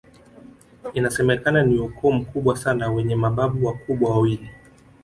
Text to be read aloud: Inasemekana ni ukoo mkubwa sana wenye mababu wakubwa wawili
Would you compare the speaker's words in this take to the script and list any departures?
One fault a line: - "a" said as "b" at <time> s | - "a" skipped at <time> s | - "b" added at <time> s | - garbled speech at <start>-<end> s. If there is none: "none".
none